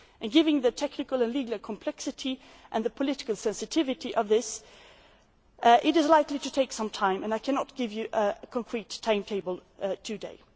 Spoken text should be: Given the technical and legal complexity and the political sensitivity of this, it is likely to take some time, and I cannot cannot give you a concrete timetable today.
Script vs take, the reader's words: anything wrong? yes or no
yes